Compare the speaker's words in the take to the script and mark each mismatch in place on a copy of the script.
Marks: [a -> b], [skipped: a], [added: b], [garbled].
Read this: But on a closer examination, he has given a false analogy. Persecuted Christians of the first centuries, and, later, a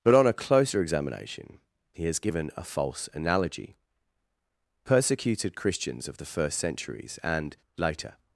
But on a closer examination, he has given a false analogy. Persecuted Christians of the first centuries, and, later, [skipped: a]